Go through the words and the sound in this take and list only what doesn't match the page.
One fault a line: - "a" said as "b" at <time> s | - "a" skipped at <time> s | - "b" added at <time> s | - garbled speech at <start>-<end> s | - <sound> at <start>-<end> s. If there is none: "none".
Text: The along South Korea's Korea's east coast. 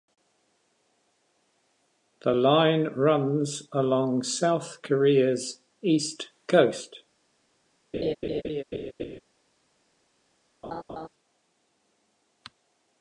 - "line runs" added at 2.3 s
- "Korea's" skipped at 5.6 s
- laugh at 7.9-9.2 s
- laugh at 10.6-11.1 s